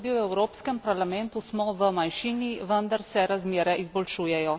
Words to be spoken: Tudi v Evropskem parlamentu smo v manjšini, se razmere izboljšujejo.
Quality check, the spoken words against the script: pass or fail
fail